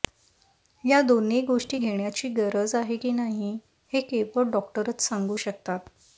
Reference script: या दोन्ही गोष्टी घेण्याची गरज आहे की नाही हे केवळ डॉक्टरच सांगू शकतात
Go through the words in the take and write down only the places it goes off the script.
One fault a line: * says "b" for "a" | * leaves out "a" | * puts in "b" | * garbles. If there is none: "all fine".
all fine